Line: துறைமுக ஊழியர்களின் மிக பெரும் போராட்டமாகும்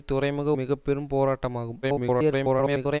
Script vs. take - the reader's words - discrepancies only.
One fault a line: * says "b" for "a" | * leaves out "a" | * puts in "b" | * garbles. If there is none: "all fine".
* leaves out "ஊழியர்களின்"
* garbles